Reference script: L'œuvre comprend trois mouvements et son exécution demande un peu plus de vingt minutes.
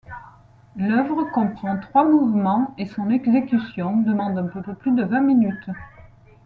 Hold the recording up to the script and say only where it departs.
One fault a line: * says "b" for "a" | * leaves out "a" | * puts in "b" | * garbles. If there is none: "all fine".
* puts in "peu"